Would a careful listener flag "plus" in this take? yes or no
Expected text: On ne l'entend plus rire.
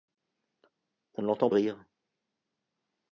yes